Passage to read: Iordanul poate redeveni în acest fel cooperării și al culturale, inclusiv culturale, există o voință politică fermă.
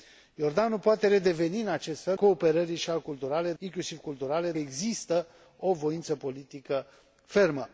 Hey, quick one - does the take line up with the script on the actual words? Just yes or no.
yes